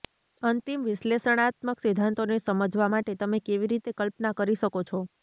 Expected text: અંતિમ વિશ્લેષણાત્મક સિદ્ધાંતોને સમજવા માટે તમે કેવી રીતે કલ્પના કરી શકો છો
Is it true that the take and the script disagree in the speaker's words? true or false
false